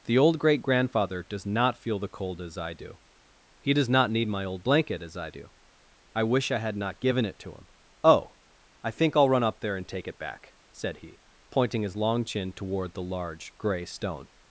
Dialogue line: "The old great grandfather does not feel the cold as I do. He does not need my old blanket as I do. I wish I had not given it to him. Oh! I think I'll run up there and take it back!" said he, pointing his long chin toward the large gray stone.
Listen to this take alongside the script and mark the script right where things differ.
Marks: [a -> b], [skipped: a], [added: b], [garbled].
"The old great grandfather does not feel the cold as I do. He does not need my old blanket as I do. I wish I had not given it to him. Oh! I think I'll run up there and take it back!" said he, pointing his long chin toward the large gray stone.